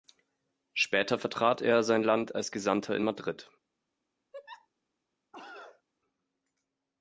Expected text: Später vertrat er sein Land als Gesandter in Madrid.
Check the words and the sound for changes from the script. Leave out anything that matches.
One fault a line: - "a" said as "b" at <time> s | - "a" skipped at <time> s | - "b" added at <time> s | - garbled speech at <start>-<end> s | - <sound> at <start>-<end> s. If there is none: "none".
- laugh at 4.3-4.7 s
- cough at 5.3-5.8 s